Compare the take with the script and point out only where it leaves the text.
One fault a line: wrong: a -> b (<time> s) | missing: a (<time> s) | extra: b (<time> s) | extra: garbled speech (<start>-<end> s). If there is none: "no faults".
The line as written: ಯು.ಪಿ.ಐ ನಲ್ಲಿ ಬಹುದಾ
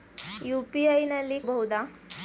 no faults